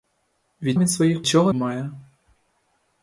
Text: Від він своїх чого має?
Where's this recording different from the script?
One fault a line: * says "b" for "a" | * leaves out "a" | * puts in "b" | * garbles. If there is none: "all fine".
all fine